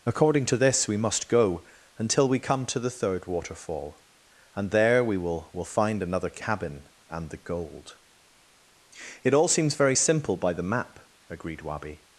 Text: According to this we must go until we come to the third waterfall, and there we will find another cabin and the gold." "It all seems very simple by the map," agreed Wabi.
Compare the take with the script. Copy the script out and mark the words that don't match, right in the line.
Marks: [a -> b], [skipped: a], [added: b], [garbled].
According to this we must go until we come to the third waterfall, and there we will [added: will] find another cabin and the gold." "It all seems very simple by the map," agreed Wabi.